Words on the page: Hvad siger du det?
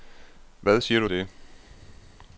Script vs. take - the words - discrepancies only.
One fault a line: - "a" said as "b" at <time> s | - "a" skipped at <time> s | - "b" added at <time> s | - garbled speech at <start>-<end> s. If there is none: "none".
none